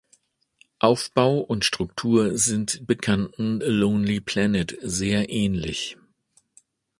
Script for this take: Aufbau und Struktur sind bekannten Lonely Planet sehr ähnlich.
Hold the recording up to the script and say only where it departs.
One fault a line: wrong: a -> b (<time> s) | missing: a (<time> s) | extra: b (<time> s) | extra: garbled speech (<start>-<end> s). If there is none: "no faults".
no faults